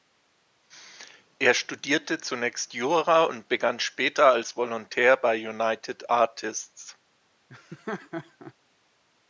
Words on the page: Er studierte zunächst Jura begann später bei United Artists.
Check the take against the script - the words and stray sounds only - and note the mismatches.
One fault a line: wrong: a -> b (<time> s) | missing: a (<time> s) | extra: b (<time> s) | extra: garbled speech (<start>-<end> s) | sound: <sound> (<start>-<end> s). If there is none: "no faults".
extra: und (3.2 s)
extra: als Volontär (4.3 s)
sound: laugh (7.5-8.5 s)